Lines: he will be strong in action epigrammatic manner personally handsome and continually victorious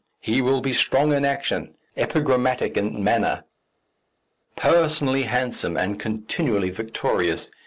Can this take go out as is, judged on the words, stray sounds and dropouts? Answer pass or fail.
fail